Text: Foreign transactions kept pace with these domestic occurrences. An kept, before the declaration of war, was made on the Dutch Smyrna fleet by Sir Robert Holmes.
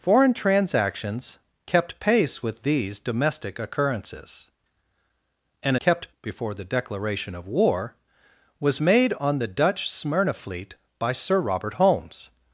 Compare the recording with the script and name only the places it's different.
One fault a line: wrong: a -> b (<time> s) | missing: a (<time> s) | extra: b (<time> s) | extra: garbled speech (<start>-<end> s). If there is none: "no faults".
no faults